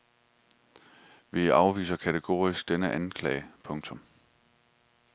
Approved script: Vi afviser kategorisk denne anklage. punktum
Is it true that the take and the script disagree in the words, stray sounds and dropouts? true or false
false